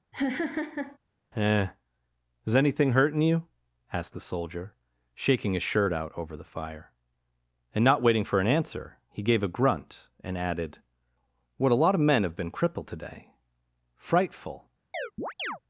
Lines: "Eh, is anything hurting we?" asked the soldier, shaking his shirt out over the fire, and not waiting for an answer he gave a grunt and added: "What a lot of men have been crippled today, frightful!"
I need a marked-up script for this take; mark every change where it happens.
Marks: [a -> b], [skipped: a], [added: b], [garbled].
"Eh, is anything hurting [we?" -> you] asked the soldier, shaking his shirt out over the fire, and not waiting for an answer he gave a grunt and added: "What a lot of men have been crippled today, frightful!"